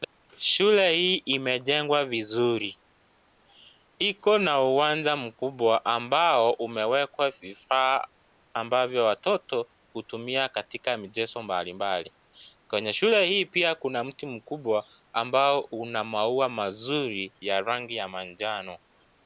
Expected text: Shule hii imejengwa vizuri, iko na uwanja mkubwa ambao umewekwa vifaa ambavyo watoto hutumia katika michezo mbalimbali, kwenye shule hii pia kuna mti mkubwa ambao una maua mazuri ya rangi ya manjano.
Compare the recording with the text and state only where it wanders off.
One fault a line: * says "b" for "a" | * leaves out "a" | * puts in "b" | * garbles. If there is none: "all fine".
all fine